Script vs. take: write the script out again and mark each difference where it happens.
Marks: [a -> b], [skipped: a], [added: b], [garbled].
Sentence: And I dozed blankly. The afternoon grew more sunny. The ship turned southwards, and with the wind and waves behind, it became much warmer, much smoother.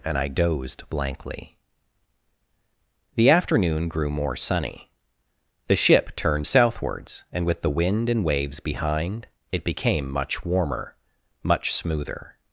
And I dozed blankly. The afternoon grew more sunny. The ship turned southwards, and with the wind and waves behind, it became much warmer, much smoother.